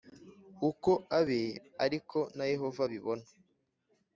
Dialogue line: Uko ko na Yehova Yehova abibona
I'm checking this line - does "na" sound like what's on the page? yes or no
yes